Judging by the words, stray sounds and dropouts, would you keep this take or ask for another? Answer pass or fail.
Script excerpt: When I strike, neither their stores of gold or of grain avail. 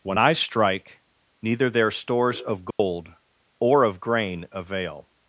fail